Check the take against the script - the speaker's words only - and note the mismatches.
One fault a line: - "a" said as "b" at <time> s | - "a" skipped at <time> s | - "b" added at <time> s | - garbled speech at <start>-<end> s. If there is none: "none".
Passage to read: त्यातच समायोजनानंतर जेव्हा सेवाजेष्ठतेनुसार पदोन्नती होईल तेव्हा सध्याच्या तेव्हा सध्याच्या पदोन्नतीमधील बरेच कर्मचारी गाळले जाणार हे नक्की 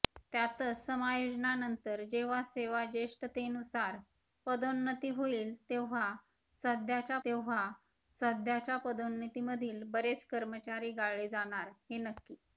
none